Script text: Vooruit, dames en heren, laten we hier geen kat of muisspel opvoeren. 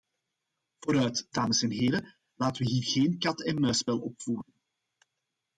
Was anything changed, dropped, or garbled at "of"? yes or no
yes